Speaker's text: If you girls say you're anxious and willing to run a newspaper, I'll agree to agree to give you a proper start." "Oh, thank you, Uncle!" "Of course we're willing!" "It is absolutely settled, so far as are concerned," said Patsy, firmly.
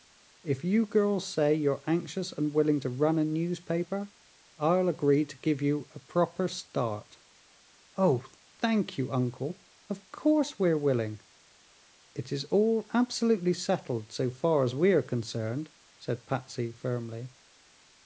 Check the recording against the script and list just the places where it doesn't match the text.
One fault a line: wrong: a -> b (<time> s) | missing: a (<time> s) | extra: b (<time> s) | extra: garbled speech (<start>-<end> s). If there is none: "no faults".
missing: agree to (5.4 s)
extra: all (12.5 s)
extra: we (14.7 s)